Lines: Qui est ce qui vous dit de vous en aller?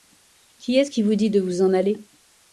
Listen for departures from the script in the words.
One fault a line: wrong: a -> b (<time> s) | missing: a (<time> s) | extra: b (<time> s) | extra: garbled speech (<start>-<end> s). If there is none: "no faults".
no faults